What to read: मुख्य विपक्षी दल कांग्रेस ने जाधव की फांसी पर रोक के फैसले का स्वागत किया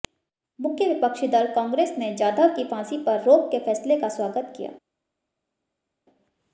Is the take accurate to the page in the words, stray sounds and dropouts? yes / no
yes